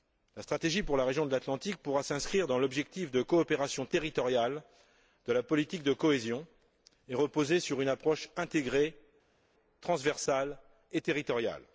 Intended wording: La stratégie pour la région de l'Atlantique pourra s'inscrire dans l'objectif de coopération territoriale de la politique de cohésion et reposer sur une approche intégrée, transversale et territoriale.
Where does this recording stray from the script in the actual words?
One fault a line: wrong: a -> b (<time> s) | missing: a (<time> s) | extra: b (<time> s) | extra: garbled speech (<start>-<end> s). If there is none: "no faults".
no faults